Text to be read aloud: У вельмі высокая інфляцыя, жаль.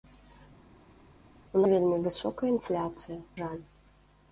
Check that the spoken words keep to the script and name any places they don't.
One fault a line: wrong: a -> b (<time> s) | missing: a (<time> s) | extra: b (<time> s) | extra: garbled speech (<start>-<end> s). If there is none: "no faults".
no faults